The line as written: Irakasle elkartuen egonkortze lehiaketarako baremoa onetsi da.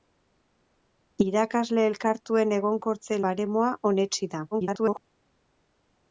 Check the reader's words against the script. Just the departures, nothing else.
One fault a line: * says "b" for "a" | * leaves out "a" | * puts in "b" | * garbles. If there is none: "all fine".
* leaves out "lehiaketarako"
* garbles